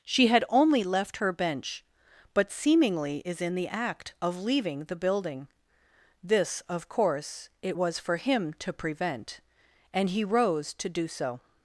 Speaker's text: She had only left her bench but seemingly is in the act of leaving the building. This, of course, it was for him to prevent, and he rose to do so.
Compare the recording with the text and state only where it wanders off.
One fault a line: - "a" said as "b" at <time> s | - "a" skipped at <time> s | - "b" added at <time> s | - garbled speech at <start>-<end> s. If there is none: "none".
none